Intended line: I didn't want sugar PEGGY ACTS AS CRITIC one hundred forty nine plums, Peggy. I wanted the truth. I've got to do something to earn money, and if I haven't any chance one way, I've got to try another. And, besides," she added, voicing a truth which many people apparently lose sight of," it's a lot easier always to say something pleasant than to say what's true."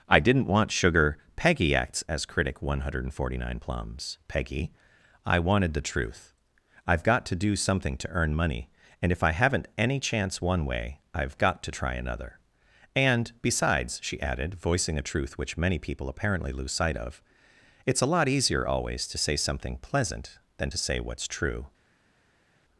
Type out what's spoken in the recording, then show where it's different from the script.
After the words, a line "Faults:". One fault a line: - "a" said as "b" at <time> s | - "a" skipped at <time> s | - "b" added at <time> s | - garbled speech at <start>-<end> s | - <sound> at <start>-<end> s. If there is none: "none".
I didn't want sugar PEGGY ACTS AS CRITIC one hundred forty nine plums, Peggy. I wanted the truth. I've got to do something to earn money, and if I haven't any chance one way, I've got to try another. And, besides," she added, voicing a truth which many people apparently lose sight of," it's a lot easier always to say something pleasant than to say what's true."
Faults:
none